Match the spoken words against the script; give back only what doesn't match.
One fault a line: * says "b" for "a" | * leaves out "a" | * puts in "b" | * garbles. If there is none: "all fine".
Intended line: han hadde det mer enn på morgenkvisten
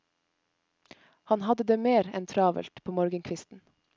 * puts in "travelt"